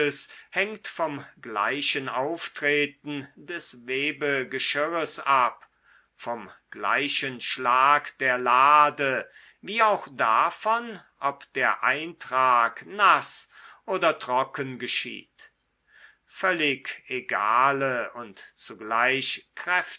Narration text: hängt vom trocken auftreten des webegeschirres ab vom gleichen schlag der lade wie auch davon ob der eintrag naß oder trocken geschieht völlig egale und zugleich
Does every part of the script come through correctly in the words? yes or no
no